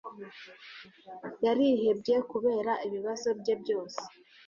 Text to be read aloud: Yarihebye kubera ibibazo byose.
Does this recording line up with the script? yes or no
no